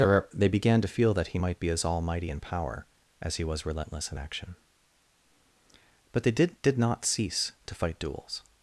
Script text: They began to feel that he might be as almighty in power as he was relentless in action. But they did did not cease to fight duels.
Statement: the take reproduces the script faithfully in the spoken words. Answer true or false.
true